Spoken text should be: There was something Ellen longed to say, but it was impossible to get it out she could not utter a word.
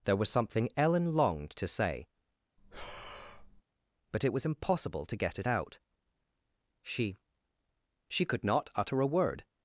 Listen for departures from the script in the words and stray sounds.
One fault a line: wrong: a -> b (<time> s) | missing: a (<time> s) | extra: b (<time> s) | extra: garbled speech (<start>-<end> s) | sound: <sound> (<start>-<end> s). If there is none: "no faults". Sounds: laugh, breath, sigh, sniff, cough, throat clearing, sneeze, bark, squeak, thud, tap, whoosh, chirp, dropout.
sound: breath (2.6-3.6 s)
extra: she (8.1 s)